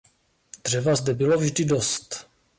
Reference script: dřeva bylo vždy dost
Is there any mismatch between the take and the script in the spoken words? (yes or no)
yes